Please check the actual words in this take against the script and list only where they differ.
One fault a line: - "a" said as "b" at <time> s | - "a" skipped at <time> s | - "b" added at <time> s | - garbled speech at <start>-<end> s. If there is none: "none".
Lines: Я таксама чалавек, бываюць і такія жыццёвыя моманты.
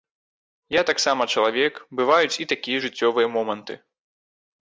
none